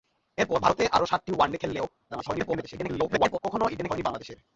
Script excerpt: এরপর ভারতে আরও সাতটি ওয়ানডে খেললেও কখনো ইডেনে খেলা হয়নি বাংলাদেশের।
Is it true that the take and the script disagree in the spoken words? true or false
true